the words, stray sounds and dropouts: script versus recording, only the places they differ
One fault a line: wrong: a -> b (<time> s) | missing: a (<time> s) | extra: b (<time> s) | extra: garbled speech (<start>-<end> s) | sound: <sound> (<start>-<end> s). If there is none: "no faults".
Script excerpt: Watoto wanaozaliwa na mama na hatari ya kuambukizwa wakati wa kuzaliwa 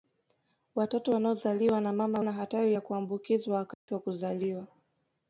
sound: dropout (3.7-3.9 s)